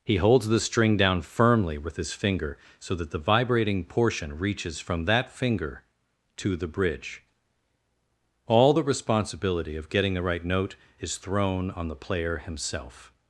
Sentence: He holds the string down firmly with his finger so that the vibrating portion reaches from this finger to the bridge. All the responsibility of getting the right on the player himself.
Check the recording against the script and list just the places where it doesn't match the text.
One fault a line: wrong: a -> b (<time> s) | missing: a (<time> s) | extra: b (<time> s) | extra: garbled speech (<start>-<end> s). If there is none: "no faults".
wrong: this -> that (5.0 s)
extra: note is thrown (10.4 s)